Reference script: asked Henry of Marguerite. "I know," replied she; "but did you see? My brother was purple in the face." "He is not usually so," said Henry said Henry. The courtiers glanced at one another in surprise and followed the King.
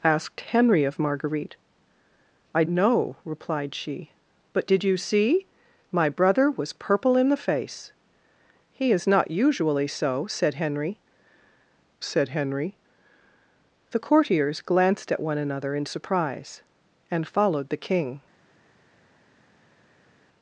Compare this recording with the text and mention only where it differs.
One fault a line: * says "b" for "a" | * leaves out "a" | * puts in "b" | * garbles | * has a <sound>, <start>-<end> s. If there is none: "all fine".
all fine